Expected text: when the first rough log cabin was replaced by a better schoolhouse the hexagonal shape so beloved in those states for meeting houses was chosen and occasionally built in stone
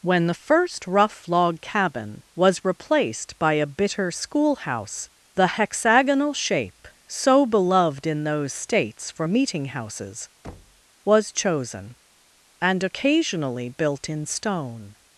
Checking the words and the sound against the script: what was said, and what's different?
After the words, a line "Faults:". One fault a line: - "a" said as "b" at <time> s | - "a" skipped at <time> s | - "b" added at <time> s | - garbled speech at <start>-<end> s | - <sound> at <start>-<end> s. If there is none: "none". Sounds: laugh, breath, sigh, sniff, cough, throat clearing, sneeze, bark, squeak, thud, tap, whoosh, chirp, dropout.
when the first rough log cabin was replaced by a bitter schoolhouse the hexagonal shape so beloved in those states for meeting houses was chosen and occasionally built in stone
Faults:
- "better" said as "bitter" at 3.7 s
- thud at 10.4-10.8 s